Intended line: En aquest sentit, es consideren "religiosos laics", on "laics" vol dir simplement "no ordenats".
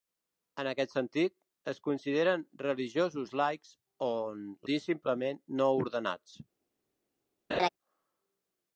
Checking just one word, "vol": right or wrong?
wrong